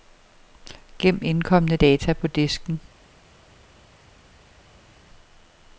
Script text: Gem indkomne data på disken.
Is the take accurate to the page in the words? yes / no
yes